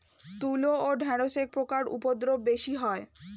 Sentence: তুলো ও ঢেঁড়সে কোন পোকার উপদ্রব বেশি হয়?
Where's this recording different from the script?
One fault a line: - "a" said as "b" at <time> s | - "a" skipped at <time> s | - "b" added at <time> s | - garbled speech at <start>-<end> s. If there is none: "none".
- "কোন" skipped at 1.4 s